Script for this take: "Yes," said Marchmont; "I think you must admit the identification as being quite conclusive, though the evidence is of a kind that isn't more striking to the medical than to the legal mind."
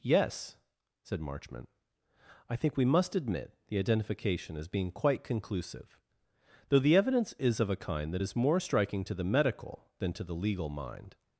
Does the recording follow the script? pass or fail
fail